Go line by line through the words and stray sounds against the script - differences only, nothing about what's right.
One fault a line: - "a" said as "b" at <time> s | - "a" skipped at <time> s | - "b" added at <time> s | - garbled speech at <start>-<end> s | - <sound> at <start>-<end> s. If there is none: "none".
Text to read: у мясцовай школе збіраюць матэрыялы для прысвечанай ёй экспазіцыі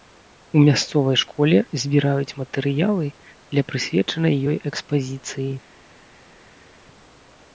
none